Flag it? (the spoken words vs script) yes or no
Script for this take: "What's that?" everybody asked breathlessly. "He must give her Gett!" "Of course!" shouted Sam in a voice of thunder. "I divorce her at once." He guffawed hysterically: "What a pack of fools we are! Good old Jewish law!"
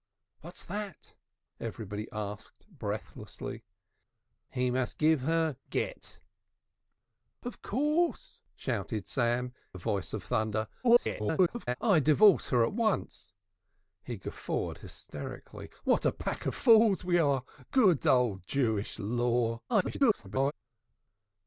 yes